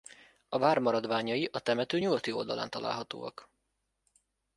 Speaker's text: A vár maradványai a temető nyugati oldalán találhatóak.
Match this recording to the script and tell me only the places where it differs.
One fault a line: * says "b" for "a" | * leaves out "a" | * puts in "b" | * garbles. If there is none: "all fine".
all fine